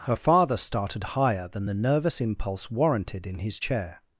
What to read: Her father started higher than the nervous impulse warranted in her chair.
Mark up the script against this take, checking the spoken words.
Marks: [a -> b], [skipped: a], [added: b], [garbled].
Her father started higher than the nervous impulse warranted in [her -> his] chair.